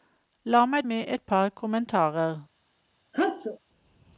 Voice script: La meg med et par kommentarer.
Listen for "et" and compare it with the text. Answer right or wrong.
right